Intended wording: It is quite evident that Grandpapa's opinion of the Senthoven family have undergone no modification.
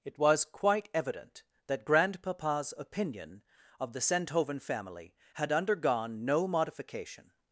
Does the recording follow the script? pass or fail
fail